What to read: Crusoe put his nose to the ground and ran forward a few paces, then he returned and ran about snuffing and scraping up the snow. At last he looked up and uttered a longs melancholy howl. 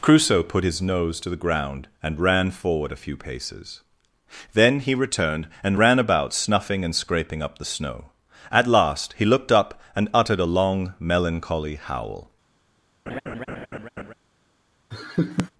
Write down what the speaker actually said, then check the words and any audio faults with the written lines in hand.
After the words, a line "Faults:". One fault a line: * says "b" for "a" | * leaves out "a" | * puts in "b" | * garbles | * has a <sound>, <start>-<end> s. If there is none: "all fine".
Crusoe put his nose to the ground and ran forward a few paces, then he returned and ran about snuffing and scraping up the snow. At last he looked up and uttered a long melancholy howl.
Faults:
* says "long" for "longs"
* has a laugh, 13.1-14.1 s
* has a laugh, 14.9-15.5 s